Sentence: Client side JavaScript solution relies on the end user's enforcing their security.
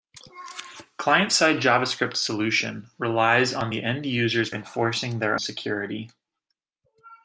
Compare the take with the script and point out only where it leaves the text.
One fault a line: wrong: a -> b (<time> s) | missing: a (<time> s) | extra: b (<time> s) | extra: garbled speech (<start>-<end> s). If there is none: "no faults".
no faults